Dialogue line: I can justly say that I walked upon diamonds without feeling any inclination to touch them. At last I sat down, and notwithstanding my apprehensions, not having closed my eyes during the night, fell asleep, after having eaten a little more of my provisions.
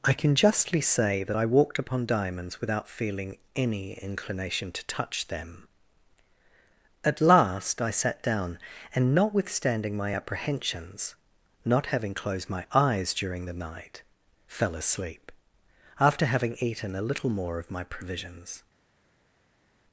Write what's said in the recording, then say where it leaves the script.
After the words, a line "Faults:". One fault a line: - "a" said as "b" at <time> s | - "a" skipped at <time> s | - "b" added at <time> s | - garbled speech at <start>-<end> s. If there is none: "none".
I can justly say that I walked upon diamonds without feeling any inclination to touch them. At last I sat down, and notwithstanding my apprehensions, not having closed my eyes during the night, fell asleep, after having eaten a little more of my provisions.
Faults:
none